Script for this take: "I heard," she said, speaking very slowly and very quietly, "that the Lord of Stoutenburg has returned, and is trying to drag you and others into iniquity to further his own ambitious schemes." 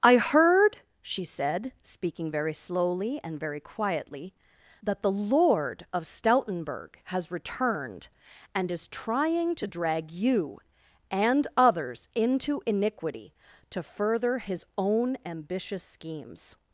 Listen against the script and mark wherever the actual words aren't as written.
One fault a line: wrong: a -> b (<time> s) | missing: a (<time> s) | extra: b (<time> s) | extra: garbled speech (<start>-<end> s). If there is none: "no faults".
no faults